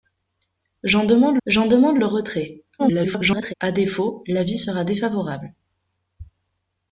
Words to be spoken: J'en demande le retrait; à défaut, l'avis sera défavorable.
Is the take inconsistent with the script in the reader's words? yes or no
yes